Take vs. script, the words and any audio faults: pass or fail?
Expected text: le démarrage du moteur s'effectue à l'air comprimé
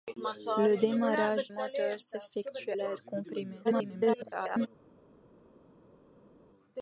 fail